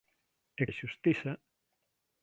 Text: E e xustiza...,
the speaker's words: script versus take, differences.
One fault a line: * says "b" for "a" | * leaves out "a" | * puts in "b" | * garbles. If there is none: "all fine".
all fine